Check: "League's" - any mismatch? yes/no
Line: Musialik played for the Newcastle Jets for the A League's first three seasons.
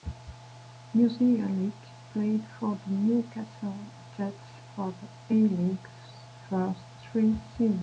no